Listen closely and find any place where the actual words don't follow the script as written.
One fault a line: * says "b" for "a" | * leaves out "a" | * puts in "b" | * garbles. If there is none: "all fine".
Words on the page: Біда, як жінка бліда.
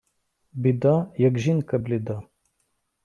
all fine